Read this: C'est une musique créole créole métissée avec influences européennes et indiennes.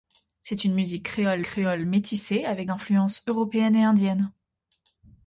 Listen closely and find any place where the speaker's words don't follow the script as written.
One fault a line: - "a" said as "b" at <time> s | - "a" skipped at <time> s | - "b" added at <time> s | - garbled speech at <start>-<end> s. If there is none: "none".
none